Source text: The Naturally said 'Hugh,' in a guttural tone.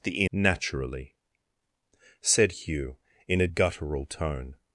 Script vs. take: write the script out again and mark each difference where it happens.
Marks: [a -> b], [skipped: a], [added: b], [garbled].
The Naturally said 'Hugh,' in a guttural tone.